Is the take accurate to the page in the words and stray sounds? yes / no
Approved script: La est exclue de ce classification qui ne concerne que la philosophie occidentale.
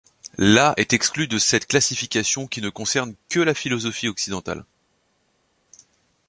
no